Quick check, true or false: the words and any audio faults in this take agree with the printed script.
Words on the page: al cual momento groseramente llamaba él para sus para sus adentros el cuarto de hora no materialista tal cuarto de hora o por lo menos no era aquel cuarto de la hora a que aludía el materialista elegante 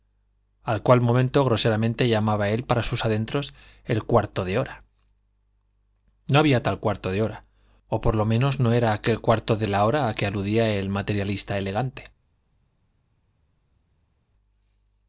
false